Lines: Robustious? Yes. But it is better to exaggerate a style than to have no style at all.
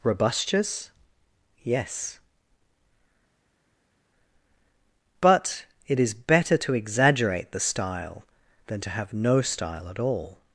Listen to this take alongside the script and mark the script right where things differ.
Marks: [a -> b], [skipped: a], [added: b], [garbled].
Robustious? Yes. But it is better to exaggerate [a -> the] style than to have no style at all.